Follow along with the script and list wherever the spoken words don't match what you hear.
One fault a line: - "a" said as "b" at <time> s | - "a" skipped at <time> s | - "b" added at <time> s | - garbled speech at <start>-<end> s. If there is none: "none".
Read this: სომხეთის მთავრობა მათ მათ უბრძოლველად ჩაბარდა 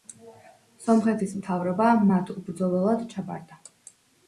- "მათ" skipped at 2.3 s